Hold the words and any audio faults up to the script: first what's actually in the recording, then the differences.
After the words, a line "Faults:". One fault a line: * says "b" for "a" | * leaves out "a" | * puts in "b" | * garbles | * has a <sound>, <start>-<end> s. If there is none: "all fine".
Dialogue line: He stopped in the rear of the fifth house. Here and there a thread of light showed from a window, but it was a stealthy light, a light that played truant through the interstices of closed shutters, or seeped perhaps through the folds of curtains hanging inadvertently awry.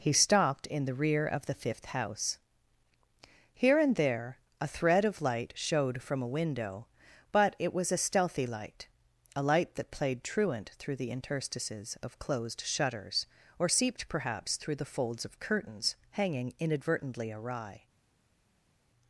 He stopped in the rear of the fifth house. Here and there a thread of light showed from a window, but it was a stealthy light, a light that played truant through the interstices of closed shutters, or seeped perhaps through the folds of curtains hanging inadvertently awry.
Faults:
all fine